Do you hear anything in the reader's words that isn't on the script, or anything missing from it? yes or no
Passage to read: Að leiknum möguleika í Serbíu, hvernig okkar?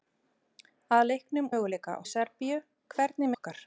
no